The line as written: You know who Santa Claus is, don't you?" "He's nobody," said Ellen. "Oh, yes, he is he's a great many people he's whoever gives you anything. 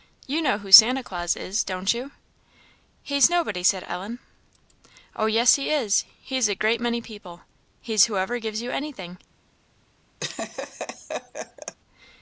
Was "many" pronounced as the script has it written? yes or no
yes